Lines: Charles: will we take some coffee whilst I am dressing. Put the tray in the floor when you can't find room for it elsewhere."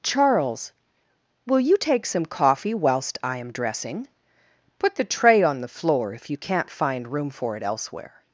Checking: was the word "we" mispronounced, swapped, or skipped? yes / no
yes